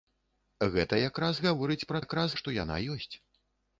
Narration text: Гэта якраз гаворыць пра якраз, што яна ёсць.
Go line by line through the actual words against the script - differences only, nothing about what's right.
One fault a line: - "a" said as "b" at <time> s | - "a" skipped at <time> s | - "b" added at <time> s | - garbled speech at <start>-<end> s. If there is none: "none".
none